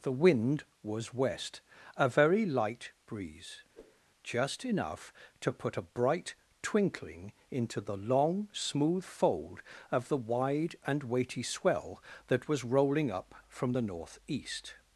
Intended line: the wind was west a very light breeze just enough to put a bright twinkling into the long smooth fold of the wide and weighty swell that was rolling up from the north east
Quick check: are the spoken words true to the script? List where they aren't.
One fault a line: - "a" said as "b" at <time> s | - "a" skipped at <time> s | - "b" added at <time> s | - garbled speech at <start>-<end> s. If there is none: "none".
none